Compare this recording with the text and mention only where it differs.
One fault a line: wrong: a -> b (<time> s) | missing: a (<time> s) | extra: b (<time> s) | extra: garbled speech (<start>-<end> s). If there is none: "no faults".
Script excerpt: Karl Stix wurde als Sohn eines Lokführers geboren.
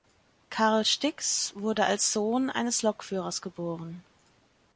no faults